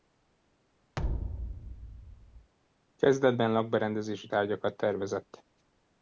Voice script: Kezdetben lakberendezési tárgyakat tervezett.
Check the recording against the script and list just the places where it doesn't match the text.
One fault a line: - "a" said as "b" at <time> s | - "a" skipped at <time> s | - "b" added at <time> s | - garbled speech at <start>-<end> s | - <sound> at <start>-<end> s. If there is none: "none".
- thud at 1.0-2.5 s